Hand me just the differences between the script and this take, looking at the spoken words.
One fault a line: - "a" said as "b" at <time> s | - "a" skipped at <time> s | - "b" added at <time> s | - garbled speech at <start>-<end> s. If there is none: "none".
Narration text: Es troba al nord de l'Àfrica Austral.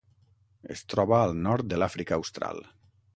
none